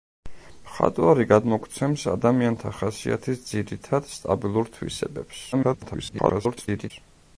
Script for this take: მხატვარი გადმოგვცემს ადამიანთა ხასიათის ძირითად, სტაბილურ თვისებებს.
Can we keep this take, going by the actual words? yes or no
no